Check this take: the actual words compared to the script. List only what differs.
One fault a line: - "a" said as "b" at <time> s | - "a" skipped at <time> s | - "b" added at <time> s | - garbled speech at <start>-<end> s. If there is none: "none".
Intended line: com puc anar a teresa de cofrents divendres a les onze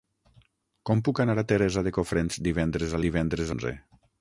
- "les" said as "divendres" at 3.1 s